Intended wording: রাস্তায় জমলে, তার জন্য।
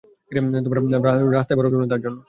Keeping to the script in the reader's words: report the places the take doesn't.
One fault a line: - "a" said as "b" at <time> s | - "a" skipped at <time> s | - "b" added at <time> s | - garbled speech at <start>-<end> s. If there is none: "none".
- "বরফ" added at 1.6 s